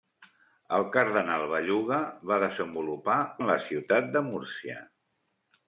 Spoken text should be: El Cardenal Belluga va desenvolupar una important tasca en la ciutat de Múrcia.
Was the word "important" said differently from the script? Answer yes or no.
yes